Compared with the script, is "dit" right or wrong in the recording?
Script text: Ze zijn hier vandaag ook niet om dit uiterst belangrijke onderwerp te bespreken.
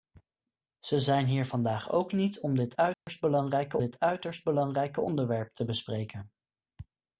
right